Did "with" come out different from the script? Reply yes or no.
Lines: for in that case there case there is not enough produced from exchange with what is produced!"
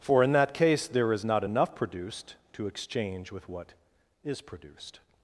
no